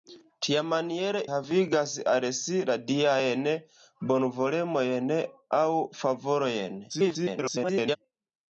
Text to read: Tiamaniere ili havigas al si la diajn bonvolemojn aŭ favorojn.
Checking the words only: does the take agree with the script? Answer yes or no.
no